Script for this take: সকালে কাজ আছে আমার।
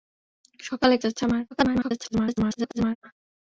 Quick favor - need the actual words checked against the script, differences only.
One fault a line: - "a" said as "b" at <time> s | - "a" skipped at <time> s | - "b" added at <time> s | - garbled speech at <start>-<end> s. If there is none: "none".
- "কাজ" skipped at 0.9 s
- garbled speech at 1.5-3.0 s